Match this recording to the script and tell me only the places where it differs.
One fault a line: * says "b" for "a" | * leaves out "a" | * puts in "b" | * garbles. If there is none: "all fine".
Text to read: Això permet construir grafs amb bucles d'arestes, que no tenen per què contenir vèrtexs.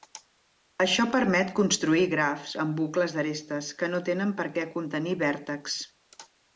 all fine